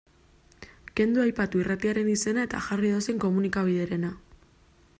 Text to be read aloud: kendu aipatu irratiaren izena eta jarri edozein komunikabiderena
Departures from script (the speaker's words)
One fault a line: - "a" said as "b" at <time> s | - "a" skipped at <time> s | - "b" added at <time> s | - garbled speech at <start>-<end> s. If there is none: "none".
none